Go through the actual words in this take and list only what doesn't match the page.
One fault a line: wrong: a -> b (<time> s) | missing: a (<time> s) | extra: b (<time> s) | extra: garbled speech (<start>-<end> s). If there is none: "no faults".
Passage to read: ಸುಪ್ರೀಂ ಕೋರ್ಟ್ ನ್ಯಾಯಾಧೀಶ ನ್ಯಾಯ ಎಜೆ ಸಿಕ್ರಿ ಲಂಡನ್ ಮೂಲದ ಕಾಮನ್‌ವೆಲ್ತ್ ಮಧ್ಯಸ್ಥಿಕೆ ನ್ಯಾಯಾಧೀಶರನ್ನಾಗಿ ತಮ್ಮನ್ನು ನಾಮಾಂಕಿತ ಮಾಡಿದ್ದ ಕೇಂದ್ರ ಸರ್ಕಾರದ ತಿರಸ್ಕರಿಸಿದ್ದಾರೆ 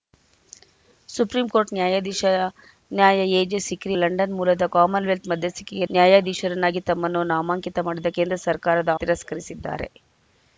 no faults